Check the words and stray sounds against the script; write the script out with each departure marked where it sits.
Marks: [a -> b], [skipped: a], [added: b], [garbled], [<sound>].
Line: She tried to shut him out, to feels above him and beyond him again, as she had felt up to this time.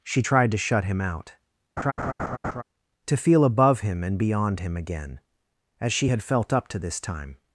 She tried to shut him out, [laugh] to [feels -> feel] above him and beyond him again, as she had felt up to this time.